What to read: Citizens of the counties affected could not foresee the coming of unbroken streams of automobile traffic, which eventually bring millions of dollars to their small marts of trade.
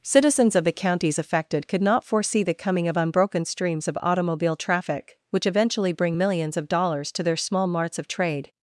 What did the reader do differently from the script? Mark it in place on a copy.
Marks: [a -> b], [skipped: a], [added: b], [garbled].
Citizens of the counties affected could not foresee the coming of unbroken streams of automobile traffic, which eventually bring millions of dollars to their small marts of trade.